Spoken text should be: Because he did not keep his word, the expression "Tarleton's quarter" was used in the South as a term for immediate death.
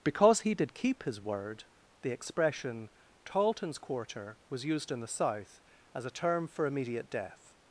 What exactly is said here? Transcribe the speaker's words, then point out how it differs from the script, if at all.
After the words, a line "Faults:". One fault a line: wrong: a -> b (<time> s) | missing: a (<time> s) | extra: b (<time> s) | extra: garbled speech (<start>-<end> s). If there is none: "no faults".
Because he did keep his word, the expression "Tarleton's quarter" was used in the South as a term for immediate death.
Faults:
missing: not (0.7 s)